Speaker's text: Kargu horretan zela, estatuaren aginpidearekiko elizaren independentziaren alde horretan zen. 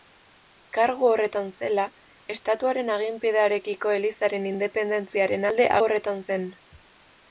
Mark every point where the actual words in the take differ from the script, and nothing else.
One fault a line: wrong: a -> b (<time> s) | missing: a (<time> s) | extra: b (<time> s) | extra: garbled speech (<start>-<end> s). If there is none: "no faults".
no faults